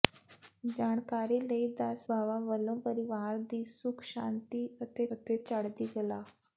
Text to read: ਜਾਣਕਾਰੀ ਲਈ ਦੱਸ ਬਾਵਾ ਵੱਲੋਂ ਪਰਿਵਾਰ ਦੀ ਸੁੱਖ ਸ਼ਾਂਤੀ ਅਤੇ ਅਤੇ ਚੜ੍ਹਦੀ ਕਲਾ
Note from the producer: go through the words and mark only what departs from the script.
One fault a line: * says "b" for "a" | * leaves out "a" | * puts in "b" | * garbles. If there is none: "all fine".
all fine